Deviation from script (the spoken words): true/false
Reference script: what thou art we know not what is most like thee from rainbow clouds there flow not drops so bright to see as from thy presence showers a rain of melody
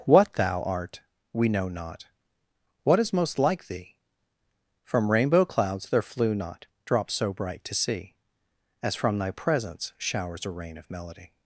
true